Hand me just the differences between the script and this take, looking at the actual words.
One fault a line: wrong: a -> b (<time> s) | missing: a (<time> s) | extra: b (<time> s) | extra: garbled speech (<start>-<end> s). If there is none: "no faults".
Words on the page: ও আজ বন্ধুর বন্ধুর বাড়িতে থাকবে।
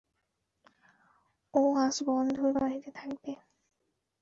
missing: বন্ধুর (2.5 s)